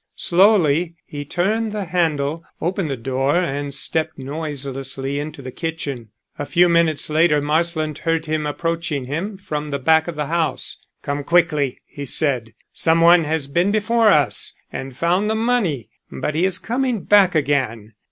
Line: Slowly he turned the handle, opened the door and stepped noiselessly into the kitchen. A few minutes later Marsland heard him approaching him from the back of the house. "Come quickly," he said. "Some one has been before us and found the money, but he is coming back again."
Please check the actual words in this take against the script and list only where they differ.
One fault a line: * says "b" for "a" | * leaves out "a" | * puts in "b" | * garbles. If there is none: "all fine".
all fine